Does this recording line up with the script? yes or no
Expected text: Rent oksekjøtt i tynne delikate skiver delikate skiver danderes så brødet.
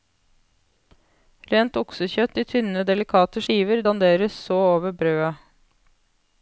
no